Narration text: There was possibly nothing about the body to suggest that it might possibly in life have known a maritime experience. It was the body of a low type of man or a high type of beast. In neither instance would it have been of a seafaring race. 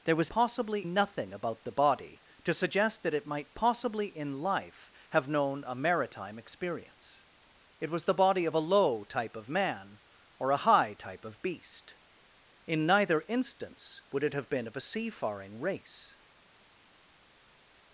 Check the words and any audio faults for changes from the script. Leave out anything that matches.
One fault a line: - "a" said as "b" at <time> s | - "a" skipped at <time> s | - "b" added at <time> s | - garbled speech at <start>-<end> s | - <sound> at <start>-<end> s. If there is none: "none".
none